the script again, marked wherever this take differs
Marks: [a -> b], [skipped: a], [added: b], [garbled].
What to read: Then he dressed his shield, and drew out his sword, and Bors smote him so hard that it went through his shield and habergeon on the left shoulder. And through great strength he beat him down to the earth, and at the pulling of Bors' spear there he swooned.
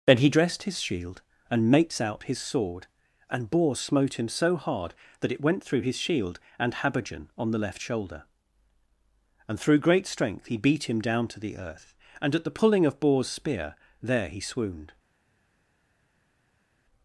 Then he dressed his shield, and [drew -> mates] out his sword, and Bors smote him so hard that it went through his shield and habergeon on the left shoulder. And through great strength he beat him down to the earth, and at the pulling of Bors' spear there he swooned.